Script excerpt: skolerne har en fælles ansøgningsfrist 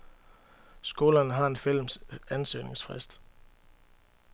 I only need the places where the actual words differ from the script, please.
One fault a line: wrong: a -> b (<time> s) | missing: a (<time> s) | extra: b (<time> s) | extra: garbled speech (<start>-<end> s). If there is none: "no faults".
no faults